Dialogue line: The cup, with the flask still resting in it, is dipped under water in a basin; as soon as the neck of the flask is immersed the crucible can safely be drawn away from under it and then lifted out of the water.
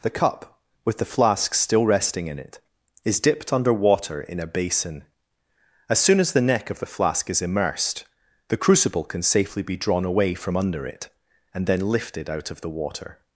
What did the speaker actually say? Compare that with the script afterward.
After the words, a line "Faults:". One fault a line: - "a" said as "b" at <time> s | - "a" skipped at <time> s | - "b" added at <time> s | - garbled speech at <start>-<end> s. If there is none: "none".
The cup, with the flask still resting in it, is dipped under water in a basin; as soon as the neck of the flask is immersed the crucible can safely be drawn away from under it and then lifted out of the water.
Faults:
none